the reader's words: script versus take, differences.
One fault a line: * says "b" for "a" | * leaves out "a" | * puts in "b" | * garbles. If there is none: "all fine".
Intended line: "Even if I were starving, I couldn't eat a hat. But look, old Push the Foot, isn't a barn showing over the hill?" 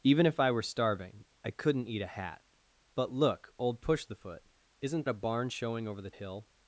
all fine